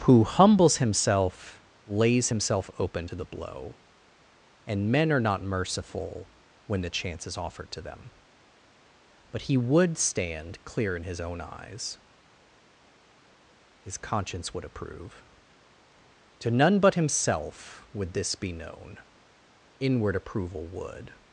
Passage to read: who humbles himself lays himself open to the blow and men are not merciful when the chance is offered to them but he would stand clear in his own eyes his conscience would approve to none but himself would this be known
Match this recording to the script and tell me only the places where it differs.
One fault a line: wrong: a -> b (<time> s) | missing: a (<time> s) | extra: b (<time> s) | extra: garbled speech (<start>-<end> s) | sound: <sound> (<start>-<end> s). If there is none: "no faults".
extra: inward approval would (19.8 s)